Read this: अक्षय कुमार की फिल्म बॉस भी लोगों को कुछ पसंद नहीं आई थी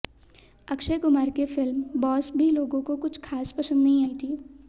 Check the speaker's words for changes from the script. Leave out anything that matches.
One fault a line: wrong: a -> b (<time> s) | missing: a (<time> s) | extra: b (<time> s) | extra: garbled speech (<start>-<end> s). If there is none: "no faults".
extra: खास (3.2 s)